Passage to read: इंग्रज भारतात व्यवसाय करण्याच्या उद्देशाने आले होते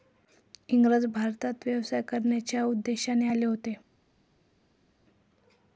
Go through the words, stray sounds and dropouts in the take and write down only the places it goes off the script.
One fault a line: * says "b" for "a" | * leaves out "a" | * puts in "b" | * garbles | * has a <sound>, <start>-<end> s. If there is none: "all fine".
all fine